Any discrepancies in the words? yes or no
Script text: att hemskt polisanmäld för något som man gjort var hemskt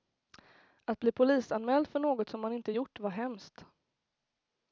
yes